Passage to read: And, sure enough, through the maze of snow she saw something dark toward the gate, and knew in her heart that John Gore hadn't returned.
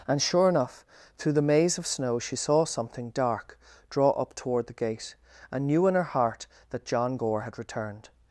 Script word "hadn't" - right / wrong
wrong